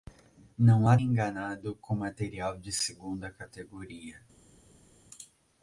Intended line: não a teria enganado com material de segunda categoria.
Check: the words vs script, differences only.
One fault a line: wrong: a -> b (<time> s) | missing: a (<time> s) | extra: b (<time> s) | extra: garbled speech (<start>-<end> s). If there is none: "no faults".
missing: teria (1.0 s)